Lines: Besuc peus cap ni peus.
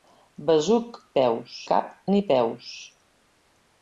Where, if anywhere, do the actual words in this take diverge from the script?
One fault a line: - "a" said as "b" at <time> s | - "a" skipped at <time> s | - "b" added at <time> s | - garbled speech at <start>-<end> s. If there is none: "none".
none